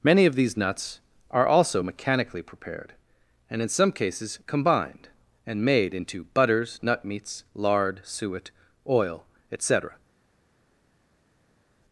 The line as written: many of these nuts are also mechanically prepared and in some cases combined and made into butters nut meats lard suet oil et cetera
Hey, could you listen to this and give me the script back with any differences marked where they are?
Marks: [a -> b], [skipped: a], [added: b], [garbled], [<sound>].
many of these nuts are also mechanically prepared and in some cases combined and made into butters nut meats lard suet oil et cetera